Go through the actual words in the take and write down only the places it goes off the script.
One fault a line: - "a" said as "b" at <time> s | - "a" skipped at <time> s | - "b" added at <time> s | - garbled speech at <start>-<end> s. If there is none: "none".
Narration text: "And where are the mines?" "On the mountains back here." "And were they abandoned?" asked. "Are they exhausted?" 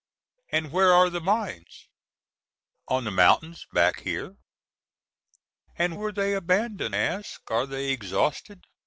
none